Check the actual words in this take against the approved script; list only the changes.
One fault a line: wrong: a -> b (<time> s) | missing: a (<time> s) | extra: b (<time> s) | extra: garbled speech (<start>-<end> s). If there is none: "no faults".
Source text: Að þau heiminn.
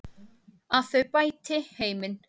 extra: bæti (1.2 s)